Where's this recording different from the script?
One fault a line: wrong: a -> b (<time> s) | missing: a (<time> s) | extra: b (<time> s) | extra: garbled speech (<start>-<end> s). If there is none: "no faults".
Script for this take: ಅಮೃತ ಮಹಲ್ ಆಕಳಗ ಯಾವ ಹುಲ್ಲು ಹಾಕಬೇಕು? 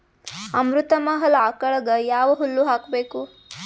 no faults